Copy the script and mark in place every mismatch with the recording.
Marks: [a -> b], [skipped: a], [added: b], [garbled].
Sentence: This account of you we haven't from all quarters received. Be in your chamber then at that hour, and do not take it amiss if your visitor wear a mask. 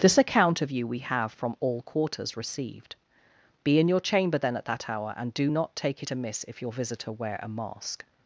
This account of you we [haven't -> have] from all quarters received. Be in your chamber then at that hour, and do not take it amiss if your visitor wear a mask.